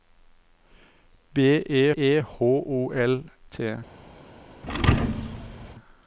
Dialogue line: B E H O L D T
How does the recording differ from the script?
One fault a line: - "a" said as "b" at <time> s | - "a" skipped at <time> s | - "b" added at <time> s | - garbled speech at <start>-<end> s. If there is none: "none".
- "E" added at 2.0 s
- "D" skipped at 3.2 s